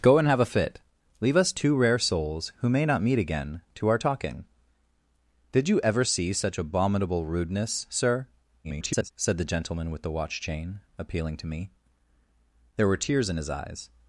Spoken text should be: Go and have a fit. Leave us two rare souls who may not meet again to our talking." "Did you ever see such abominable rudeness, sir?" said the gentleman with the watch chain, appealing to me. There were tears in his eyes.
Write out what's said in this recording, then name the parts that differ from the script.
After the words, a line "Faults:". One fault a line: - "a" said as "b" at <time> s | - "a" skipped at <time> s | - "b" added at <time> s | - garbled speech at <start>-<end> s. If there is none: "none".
Go and have a fit. Leave us two rare souls who may not meet again to our talking." "Did you ever see such abominable rudeness, sir?" [garbled] said the gentleman with the watch chain, appealing to me. There were tears in his eyes.
Faults:
- garbled speech at 8.6-9.1 s